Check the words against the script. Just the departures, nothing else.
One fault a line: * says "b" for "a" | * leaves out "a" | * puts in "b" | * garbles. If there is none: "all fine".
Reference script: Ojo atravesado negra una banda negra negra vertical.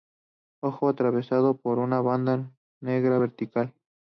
* says "por" for "negra"
* leaves out "negra"